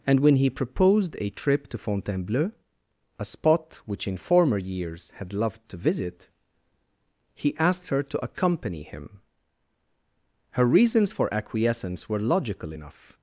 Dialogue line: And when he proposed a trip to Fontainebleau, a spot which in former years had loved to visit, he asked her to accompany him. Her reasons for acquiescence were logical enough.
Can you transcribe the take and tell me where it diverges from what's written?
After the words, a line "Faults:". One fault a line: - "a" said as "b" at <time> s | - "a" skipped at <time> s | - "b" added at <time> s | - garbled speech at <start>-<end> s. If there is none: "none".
And when he proposed a trip to Fontainebleau, a spot which in former years had loved to visit, he asked her to accompany him. Her reasons for acquiescence were logical enough.
Faults:
none